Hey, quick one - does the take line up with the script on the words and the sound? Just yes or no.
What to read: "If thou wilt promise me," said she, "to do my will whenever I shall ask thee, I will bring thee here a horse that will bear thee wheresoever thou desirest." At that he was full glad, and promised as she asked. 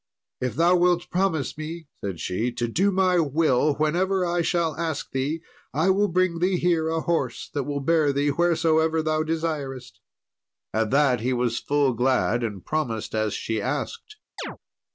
no